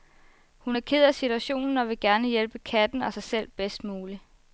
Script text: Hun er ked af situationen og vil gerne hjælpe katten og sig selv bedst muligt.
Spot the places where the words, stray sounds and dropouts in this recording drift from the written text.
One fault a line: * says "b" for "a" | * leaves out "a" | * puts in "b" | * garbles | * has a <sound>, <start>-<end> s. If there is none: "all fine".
all fine